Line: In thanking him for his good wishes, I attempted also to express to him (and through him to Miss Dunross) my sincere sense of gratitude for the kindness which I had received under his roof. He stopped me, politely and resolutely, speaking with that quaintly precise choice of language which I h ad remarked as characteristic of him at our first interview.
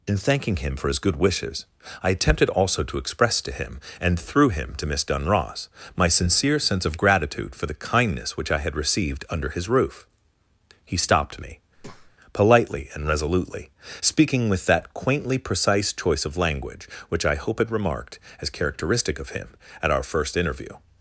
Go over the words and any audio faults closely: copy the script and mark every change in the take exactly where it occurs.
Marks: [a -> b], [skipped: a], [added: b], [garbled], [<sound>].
In thanking him for his good wishes, I attempted also to express to him (and through him to Miss Dunross) my sincere sense of gratitude for the kindness which I had received under his roof. He stopped me, [breath] politely and resolutely, speaking with that quaintly precise choice of language which I [h ad -> hope had] remarked as characteristic of him at our first interview.